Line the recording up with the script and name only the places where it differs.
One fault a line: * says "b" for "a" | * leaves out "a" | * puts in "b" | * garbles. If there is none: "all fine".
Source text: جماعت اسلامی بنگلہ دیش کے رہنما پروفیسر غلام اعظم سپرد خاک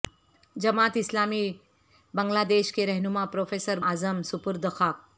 * leaves out "غلام"